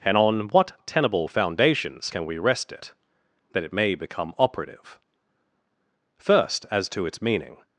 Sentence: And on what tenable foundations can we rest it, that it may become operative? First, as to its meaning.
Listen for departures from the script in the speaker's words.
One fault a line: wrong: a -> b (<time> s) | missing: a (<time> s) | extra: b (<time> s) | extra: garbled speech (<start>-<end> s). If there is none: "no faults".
no faults